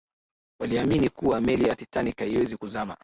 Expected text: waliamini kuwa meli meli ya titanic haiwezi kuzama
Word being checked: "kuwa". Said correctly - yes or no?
yes